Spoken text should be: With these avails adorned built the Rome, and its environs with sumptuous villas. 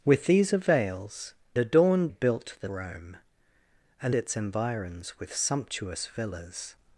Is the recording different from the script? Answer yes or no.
no